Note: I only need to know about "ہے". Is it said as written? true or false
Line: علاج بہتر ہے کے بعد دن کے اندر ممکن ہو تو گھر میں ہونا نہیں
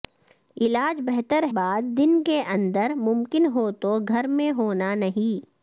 false